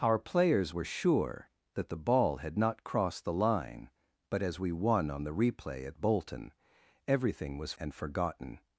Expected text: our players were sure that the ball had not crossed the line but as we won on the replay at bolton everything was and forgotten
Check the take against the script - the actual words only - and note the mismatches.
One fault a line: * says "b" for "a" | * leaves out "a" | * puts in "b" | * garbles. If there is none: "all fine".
all fine